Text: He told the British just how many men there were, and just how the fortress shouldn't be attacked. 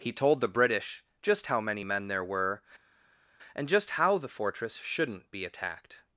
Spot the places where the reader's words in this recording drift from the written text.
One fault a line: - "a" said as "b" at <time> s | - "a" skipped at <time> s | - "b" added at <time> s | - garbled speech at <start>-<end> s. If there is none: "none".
none